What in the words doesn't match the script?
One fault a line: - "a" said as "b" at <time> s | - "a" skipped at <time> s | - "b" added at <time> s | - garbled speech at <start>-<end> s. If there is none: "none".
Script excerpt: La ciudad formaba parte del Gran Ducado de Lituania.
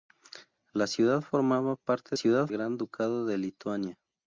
- "del" said as "ciudad" at 2.1 s